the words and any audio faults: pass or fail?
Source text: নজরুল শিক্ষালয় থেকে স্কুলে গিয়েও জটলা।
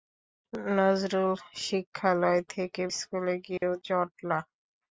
fail